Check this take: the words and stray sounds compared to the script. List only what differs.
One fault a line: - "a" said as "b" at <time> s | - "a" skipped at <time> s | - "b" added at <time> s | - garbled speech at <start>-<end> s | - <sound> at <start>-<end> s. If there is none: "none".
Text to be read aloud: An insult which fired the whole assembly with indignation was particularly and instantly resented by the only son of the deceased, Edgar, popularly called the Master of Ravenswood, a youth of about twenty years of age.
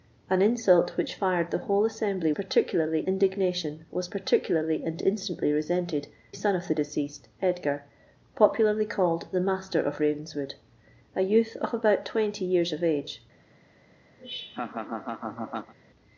- "with" said as "particularly" at 2.3 s
- "by the only" skipped at 6.1 s
- laugh at 14.2-15.7 s